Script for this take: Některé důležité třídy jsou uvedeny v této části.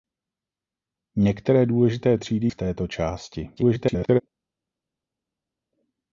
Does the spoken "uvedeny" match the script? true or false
false